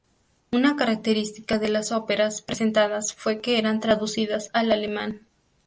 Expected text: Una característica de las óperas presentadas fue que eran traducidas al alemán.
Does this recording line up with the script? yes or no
yes